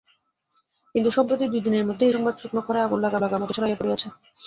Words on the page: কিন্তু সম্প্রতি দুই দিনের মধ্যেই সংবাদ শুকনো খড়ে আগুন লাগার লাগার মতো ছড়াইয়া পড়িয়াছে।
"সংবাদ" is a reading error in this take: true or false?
false